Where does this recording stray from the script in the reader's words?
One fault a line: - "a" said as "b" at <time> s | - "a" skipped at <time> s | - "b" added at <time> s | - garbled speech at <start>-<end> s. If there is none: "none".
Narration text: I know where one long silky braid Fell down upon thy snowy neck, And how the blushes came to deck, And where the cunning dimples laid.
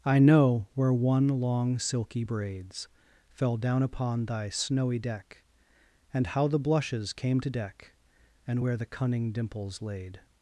- "braid" said as "braids" at 2.2 s
- "neck" said as "deck" at 5.0 s